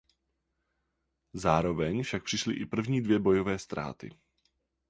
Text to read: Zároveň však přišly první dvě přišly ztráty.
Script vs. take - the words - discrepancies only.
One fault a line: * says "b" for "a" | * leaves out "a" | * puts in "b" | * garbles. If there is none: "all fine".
* puts in "i"
* says "bojové" for "přišly"